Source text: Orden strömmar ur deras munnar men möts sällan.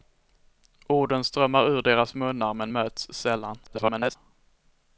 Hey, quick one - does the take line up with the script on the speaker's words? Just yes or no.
no